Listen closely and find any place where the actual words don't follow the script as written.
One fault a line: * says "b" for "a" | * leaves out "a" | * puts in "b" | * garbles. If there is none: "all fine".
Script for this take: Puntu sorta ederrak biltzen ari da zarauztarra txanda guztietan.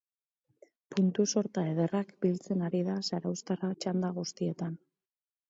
all fine